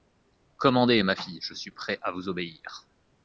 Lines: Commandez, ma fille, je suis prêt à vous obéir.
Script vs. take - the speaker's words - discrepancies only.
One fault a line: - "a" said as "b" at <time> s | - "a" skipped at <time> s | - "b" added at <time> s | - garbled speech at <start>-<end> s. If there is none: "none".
none